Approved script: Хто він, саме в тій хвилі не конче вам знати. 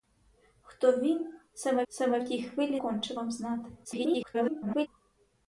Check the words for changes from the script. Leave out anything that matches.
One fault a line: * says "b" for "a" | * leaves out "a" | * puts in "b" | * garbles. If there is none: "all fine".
* puts in "саме"
* leaves out "не"
* garbles